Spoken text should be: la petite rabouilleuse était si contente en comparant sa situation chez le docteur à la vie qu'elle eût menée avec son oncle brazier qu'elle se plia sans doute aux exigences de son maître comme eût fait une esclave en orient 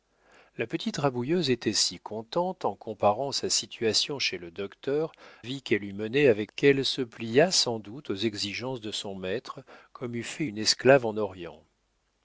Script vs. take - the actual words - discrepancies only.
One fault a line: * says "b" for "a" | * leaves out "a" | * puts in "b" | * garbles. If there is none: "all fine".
* leaves out "à la"
* leaves out "son oncle brazier"